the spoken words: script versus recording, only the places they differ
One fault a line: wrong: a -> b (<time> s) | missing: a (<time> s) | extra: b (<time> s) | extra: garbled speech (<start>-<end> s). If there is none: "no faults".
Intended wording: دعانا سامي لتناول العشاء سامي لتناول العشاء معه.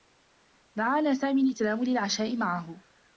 missing: سامي لتناول العشاء (2.4 s)